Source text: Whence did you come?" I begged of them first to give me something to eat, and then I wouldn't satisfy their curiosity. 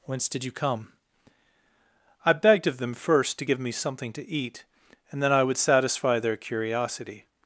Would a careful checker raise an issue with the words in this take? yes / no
yes